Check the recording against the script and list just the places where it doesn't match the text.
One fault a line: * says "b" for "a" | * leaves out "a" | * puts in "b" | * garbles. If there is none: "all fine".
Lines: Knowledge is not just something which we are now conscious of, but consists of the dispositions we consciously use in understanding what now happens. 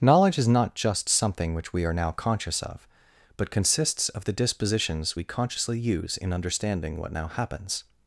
all fine